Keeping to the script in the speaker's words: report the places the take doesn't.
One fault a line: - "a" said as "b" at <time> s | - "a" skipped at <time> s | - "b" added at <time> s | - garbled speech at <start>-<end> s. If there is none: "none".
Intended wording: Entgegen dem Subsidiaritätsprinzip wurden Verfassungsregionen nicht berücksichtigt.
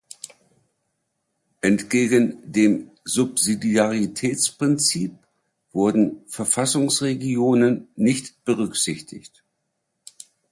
none